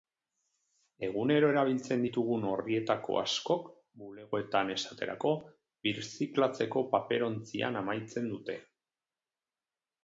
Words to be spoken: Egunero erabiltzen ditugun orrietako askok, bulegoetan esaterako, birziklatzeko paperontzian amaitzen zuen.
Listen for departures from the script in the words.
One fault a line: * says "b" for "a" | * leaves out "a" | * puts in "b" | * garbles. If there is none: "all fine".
* says "dute" for "zuen"